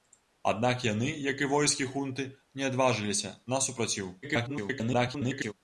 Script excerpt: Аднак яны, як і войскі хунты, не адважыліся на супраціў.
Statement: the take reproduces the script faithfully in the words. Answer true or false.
false